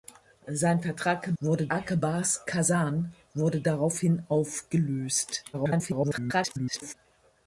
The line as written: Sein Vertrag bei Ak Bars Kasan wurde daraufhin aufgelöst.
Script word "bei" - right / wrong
wrong